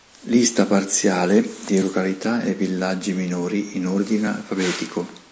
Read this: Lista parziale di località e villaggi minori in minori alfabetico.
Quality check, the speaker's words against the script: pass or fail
fail